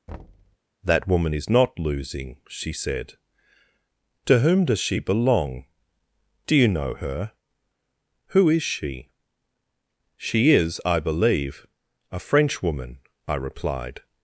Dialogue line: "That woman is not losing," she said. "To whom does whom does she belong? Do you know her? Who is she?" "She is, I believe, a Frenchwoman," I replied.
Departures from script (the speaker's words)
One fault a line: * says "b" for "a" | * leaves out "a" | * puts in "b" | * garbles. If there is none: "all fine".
* leaves out "whom does"